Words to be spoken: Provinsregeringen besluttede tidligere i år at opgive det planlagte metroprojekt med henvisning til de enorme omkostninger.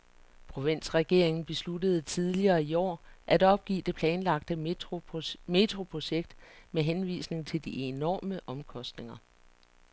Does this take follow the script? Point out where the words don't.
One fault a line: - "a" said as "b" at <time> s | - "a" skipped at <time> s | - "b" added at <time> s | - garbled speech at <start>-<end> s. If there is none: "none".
none